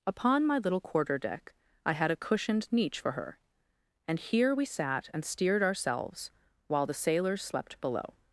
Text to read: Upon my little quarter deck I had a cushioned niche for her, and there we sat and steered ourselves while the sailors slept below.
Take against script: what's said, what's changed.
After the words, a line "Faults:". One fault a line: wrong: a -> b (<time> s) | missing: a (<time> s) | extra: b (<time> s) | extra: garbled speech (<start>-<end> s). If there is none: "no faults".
Upon my little quarter deck I had a cushioned niche for her, and here we sat and steered ourselves while the sailors slept below.
Faults:
wrong: there -> here (4.2 s)